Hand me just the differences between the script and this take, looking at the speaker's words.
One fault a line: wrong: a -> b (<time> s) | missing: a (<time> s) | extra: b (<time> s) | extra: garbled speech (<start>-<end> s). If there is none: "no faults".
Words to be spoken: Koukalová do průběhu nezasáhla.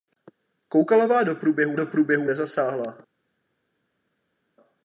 extra: do průběhu (1.7 s)